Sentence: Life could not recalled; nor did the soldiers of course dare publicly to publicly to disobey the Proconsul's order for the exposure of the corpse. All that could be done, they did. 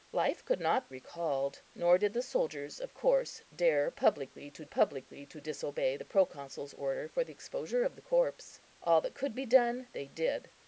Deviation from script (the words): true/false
false